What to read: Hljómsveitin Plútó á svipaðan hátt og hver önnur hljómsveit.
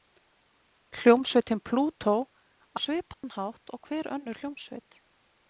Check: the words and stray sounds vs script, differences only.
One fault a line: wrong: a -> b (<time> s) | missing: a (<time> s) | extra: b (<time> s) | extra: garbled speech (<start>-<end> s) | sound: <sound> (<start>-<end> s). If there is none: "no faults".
sound: dropout (3.1-3.2 s)